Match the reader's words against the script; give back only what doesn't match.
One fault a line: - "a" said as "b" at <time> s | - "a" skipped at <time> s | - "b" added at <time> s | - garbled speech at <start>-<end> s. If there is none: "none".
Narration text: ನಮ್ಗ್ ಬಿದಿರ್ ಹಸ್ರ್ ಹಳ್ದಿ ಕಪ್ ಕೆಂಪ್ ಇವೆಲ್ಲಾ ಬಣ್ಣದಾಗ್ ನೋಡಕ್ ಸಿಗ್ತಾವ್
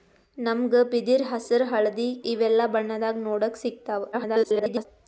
- "ಕಪ್ ಕೆಂಪ್" skipped at 2.1 s
- garbled speech at 4.1-4.8 s